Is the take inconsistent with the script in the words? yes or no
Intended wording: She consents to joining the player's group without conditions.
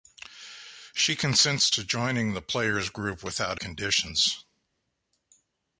no